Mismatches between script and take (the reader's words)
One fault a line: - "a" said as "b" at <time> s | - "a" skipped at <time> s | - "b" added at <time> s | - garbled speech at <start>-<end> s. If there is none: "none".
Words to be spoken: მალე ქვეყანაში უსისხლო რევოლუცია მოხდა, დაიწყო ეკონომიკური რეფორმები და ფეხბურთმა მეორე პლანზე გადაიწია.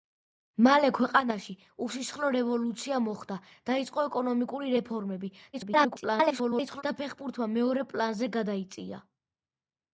- garbled speech at 5.5-6.8 s